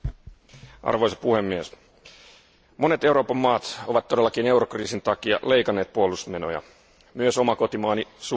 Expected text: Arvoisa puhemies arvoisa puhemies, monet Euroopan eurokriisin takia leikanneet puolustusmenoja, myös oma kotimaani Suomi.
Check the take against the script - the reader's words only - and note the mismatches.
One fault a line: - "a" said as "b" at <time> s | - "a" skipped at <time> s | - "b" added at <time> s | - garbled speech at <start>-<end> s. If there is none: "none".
- "arvoisa puhemies monet Euroopan" said as "monet Euroopan maat ovat todellakin" at 2.8 s